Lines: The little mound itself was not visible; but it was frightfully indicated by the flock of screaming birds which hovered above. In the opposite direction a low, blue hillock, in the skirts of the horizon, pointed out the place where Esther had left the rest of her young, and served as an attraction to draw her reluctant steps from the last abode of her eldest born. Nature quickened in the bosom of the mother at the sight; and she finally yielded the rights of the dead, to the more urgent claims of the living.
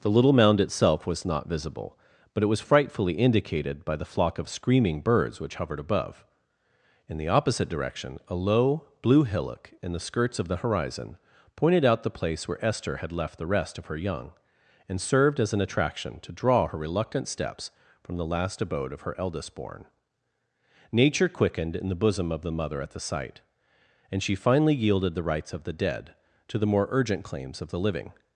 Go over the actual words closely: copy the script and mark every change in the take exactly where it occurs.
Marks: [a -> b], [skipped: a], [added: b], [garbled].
The little mound itself was not visible; but it was frightfully indicated by the flock of screaming birds which hovered above. In the opposite direction a low, blue hillock, in the skirts of the horizon, pointed out the place where Esther had left the rest of her young, and served as an attraction to draw her reluctant steps from the last abode of her eldest born. Nature quickened in the bosom of the mother at the sight; and she finally yielded the rights of the dead, to the more urgent claims of the living.